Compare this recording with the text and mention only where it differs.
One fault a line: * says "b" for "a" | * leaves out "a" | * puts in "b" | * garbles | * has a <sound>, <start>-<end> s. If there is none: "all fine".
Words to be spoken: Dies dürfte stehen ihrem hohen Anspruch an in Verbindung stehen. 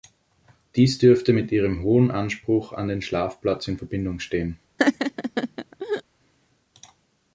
* says "mit" for "stehen"
* puts in "den Schlafplatz"
* has a laugh, 4.8-6.0 s